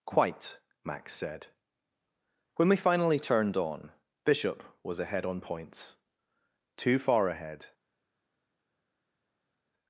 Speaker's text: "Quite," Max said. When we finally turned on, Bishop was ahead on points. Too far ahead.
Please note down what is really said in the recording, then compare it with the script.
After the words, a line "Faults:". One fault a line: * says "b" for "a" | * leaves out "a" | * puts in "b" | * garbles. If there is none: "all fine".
"Quite," Max said. When we finally turned on, Bishop was ahead on points. Too far ahead.
Faults:
all fine